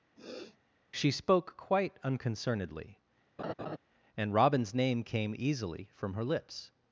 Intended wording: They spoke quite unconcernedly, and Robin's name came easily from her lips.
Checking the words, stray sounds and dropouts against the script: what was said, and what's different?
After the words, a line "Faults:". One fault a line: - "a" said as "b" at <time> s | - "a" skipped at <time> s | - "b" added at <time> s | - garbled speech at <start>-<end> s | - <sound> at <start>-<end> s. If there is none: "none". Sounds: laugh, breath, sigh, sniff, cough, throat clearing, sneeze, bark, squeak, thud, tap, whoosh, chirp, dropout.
She spoke quite unconcernedly, and Robin's name came easily from her lips.
Faults:
- sniff at 0.2-0.6 s
- "They" said as "She" at 0.9 s
- laugh at 3.4-3.8 s